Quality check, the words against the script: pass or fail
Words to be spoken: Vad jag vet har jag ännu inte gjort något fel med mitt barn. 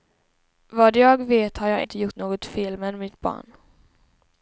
fail